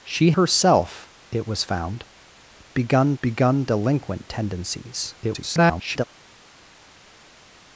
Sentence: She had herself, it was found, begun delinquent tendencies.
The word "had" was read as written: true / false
false